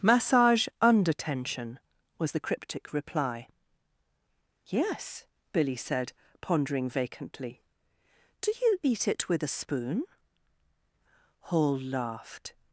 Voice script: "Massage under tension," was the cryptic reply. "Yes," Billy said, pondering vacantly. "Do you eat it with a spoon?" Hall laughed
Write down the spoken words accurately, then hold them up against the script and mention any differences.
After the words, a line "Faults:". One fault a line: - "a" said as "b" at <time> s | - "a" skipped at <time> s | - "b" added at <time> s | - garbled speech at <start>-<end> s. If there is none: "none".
"Massage under tension," was the cryptic reply. "Yes," Billy said, pondering vacantly. "Do you eat it with a spoon?" Hall laughed
Faults:
none